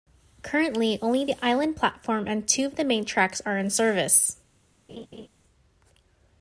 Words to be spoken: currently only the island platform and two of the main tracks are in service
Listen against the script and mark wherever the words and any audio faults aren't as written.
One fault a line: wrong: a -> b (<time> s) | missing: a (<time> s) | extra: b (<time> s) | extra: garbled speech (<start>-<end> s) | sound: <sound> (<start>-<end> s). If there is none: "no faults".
sound: laugh (4.9-5.3 s)